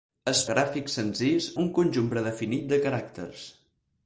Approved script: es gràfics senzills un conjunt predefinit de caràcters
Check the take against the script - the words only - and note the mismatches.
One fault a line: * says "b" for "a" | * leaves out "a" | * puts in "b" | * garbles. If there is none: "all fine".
all fine